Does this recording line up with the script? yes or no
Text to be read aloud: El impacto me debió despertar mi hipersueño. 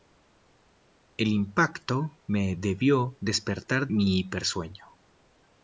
yes